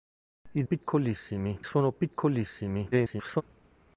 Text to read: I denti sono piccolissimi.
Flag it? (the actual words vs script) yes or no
yes